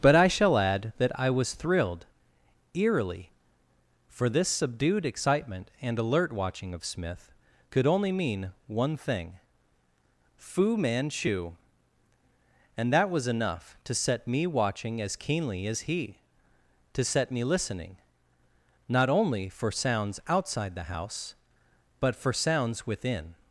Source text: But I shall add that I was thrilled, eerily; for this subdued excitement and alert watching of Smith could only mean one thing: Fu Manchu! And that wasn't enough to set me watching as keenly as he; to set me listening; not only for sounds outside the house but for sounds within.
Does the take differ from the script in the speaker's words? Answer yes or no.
yes